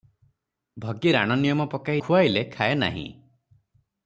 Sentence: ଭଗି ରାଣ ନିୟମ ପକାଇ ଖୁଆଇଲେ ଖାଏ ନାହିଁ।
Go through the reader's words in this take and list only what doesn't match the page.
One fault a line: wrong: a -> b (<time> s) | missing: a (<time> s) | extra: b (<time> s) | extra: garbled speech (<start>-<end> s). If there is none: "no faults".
no faults